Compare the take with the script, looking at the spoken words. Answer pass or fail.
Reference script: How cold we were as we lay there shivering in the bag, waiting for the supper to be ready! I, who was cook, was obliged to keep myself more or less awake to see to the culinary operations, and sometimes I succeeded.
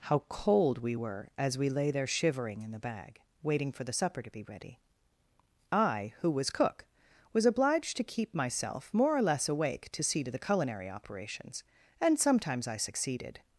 pass